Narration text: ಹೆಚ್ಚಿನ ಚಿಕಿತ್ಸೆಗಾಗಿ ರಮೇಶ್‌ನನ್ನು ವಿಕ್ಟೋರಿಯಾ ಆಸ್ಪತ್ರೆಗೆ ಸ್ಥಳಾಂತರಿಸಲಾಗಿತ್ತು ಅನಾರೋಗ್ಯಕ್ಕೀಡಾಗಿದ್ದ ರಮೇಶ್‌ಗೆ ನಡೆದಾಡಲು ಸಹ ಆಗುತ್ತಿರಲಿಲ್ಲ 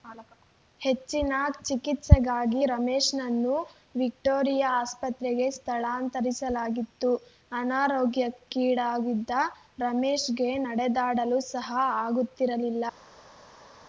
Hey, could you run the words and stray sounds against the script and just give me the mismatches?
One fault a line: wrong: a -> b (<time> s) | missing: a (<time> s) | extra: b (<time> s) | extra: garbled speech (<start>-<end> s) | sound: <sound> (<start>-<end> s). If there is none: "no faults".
no faults